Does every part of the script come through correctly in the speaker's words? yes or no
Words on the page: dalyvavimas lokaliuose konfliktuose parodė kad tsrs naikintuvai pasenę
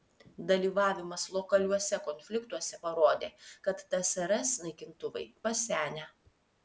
yes